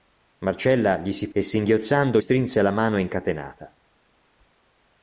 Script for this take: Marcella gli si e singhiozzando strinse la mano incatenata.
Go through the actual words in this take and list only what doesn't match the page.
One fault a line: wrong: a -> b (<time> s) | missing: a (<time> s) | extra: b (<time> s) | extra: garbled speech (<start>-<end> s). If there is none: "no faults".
no faults